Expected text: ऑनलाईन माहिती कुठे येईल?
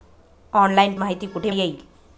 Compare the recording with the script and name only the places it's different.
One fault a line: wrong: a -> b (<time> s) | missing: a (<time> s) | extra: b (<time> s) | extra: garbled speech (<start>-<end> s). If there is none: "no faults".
no faults